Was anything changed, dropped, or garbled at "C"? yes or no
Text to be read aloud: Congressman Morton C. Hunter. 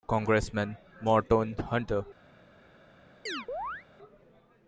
yes